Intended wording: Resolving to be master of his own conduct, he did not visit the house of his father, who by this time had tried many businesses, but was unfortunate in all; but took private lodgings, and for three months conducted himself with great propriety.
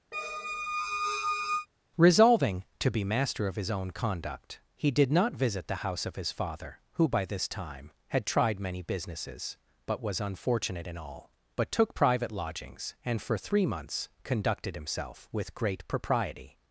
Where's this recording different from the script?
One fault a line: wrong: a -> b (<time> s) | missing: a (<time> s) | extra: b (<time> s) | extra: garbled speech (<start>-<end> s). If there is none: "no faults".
no faults